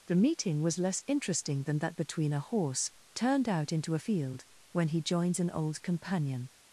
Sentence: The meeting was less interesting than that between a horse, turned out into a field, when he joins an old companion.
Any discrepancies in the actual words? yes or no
no